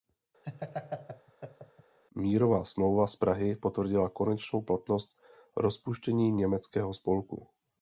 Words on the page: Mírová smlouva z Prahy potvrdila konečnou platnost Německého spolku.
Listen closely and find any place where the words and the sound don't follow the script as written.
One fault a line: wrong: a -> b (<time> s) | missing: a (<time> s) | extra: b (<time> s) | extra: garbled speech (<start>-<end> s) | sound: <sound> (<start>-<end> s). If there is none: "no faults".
sound: laugh (0.4-2.0 s)
extra: rozpuštění (5.6 s)